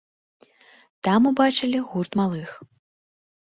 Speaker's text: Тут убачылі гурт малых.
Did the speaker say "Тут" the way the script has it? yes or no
no